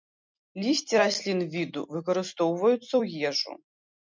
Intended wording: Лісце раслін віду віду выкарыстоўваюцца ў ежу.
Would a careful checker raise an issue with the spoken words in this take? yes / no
yes